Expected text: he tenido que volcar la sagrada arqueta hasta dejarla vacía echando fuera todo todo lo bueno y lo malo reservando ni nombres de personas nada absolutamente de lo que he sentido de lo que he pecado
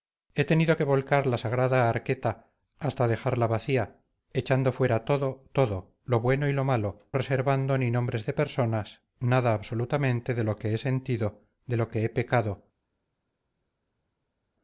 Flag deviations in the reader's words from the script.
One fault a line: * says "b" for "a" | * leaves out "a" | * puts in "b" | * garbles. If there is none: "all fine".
all fine